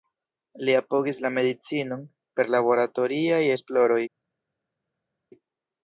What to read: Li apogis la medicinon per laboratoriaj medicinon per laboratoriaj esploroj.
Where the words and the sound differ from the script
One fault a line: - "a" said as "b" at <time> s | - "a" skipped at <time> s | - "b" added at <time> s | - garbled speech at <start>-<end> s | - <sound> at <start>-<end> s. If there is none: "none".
- "medicinon per laboratoriaj" skipped at 3.4 s